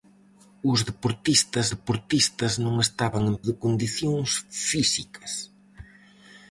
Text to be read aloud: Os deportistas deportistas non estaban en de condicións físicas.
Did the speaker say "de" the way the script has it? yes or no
yes